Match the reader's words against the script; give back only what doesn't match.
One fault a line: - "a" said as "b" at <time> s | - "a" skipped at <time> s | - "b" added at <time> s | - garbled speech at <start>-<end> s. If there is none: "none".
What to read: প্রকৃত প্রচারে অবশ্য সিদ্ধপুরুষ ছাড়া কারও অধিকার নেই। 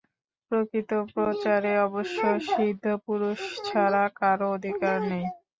none